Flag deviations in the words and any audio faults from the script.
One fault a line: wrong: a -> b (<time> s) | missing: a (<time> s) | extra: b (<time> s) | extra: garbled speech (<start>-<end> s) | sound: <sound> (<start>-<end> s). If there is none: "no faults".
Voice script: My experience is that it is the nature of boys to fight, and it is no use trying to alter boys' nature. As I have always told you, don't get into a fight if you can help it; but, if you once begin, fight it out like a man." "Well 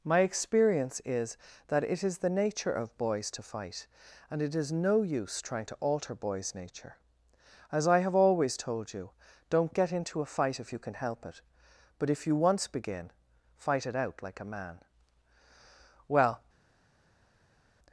no faults